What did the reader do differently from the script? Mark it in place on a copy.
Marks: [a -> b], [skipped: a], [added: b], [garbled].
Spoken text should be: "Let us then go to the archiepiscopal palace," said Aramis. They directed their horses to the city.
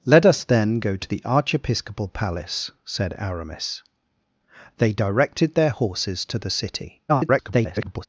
"Let us then go to the archiepiscopal palace," said Aramis. They directed their horses to the city. [garbled]